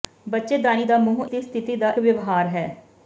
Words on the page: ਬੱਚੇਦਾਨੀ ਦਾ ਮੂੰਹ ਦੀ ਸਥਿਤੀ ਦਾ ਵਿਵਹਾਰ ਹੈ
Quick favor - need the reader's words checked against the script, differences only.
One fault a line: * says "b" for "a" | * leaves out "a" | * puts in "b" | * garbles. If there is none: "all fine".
all fine